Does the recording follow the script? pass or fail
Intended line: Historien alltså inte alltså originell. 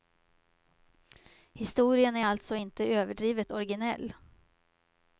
fail